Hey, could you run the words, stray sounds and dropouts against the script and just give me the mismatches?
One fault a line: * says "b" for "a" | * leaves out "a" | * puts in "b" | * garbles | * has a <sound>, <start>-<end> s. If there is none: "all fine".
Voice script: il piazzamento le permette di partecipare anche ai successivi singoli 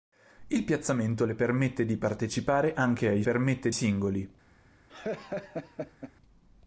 * says "permette" for "successivi"
* has a laugh, 4.9-6.1 s